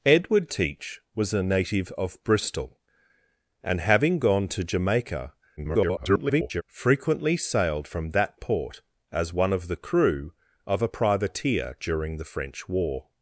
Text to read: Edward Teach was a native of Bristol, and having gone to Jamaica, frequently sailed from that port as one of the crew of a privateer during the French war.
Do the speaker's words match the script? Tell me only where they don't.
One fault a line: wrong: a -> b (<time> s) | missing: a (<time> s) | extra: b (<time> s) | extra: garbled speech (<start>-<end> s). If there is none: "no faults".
extra: garbled speech (5.6-6.6 s)